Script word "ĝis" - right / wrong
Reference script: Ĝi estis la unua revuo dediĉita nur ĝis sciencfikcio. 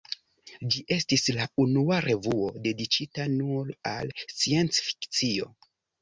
wrong